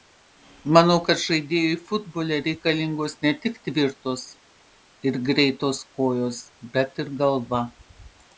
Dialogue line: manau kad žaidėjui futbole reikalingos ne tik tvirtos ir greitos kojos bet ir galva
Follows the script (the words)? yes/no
yes